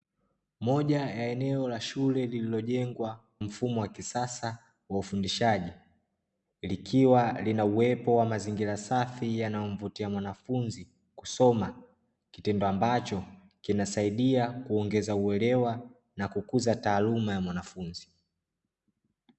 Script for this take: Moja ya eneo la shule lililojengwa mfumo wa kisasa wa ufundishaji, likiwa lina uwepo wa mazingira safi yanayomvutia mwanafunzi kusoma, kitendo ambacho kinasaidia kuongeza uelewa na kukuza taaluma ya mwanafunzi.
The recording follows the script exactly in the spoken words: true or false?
true